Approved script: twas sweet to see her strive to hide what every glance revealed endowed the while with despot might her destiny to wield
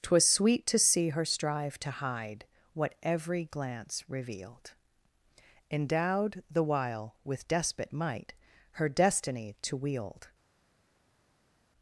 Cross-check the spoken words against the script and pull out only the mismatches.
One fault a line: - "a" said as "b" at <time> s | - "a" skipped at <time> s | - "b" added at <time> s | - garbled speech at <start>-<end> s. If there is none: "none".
none